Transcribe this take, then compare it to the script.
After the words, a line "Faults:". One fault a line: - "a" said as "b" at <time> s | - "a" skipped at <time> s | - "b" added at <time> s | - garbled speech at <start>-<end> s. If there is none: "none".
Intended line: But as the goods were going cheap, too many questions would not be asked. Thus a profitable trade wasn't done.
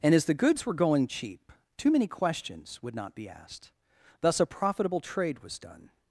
And as the goods were going cheap, too many questions would not be asked. Thus a profitable trade was done.
Faults:
- "But" said as "And" at 0.0 s
- "wasn't" said as "was" at 5.4 s